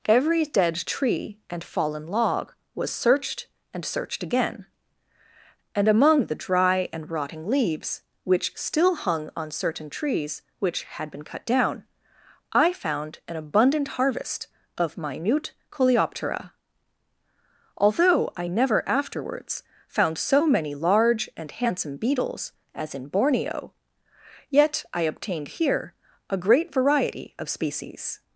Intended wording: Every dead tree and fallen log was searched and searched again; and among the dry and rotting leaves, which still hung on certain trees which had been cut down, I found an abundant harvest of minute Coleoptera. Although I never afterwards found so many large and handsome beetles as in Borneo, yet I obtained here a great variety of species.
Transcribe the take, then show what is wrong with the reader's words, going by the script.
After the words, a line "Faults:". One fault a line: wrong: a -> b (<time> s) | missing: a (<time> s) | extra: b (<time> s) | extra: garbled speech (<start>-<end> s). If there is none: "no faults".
Every dead tree and fallen log was searched and searched again; and among the dry and rotting leaves, which still hung on certain trees which had been cut down, I found an abundant harvest of minute Coleoptera. Although I never afterwards found so many large and handsome beetles as in Borneo, yet I obtained here a great variety of species.
Faults:
no faults